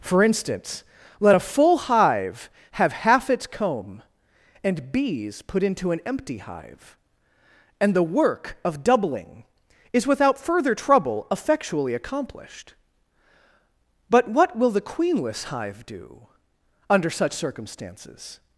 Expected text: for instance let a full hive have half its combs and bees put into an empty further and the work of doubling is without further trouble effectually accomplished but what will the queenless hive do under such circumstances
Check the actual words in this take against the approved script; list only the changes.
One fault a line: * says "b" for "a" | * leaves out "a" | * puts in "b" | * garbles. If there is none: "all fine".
* says "comb" for "combs"
* says "hive" for "further"